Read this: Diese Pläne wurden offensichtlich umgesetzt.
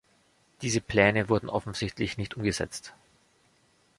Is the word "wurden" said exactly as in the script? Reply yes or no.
yes